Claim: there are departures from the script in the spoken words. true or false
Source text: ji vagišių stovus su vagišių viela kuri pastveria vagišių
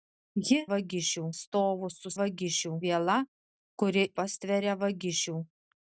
false